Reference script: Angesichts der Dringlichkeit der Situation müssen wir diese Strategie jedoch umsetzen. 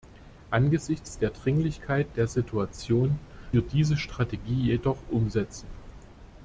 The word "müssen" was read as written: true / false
false